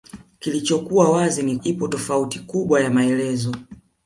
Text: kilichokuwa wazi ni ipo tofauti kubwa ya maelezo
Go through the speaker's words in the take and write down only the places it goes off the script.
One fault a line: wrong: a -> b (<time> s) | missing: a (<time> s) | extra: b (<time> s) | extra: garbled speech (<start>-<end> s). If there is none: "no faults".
no faults